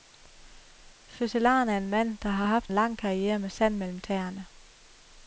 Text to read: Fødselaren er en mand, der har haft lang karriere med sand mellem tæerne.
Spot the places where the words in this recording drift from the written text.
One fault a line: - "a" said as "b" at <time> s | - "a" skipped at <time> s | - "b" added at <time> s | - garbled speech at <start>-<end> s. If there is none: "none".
none